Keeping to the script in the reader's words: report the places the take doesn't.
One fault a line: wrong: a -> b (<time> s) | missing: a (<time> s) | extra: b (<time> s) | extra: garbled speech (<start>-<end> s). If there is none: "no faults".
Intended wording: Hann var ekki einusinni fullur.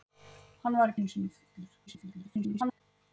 missing: ekki (0.9 s)
extra: garbled speech (1.9-2.8 s)